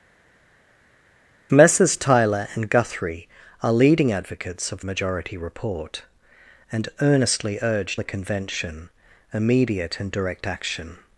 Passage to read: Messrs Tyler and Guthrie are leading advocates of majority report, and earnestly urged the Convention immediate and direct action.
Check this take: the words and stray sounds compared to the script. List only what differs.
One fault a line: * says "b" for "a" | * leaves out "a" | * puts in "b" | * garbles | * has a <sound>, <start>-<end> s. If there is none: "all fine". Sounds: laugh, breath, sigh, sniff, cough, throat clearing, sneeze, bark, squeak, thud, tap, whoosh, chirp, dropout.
all fine